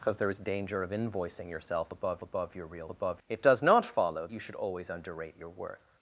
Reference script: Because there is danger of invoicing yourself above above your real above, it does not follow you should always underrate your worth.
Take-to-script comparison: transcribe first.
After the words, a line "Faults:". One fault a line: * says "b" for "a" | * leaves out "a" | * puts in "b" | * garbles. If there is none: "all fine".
Because there is danger of invoicing yourself above above your real above, it does not follow you should always underrate your worth.
Faults:
all fine